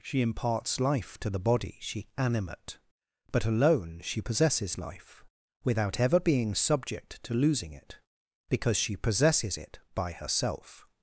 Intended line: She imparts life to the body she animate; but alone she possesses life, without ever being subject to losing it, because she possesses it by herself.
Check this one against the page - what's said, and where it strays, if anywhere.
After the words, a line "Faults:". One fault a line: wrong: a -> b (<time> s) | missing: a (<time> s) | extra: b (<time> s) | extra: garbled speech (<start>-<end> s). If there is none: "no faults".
She imparts life to the body she animate; but alone she possesses life, without ever being subject to losing it, because she possesses it by herself.
Faults:
no faults